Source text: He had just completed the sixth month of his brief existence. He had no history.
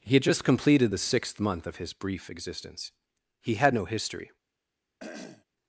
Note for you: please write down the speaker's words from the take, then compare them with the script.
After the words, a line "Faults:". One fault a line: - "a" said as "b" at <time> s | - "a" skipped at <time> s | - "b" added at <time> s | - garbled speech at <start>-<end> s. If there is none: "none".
He had just completed the sixth month of his brief existence. He had no history.
Faults:
none